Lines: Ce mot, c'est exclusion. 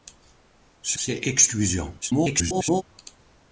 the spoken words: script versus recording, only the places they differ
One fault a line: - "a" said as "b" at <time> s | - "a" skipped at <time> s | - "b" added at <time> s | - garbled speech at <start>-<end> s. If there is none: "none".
- "mot" skipped at 1.0 s
- garbled speech at 2.0-2.8 s